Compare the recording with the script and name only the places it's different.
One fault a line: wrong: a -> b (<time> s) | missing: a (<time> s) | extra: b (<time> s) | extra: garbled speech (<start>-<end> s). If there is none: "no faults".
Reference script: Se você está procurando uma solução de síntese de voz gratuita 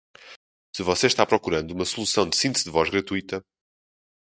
no faults